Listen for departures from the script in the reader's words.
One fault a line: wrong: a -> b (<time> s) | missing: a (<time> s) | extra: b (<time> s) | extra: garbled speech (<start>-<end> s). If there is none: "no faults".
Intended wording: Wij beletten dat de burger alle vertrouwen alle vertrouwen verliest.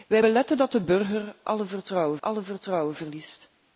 no faults